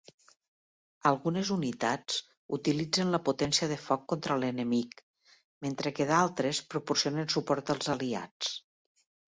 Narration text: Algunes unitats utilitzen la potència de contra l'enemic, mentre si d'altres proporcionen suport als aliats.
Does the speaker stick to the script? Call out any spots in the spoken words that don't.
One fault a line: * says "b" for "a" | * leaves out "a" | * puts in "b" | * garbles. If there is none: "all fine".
* puts in "foc"
* says "que" for "si"